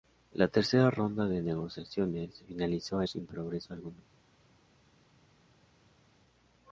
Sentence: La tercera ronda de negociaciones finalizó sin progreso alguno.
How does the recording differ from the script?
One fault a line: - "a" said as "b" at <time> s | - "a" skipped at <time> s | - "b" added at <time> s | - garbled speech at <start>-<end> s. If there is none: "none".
none